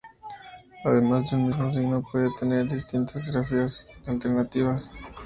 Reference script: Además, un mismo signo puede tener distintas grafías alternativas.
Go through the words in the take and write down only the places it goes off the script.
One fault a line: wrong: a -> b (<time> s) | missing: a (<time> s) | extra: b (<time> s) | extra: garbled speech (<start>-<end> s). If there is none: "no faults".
no faults